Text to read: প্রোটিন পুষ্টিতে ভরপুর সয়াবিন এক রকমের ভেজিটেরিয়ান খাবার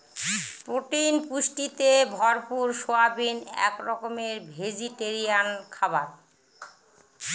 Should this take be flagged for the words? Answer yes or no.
no